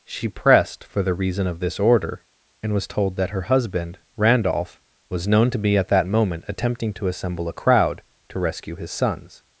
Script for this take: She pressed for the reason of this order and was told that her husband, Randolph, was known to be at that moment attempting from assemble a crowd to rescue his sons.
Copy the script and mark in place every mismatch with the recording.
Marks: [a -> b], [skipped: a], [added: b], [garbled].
She pressed for the reason of this order and was told that her husband, Randolph, was known to be at that moment attempting [from -> to] assemble a crowd to rescue his sons.